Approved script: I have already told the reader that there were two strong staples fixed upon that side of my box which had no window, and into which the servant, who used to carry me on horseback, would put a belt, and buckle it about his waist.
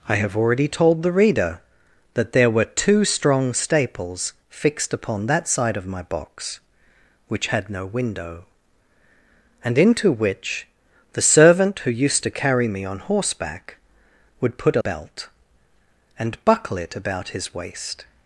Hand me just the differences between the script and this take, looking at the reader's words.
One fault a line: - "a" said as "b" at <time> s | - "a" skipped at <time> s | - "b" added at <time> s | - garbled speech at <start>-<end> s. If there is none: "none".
none